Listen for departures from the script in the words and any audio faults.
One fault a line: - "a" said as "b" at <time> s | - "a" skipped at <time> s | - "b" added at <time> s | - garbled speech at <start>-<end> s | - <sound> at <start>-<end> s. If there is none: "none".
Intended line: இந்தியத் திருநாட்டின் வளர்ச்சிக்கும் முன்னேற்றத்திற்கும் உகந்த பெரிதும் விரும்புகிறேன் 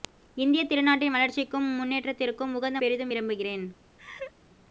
- laugh at 4.0-4.3 s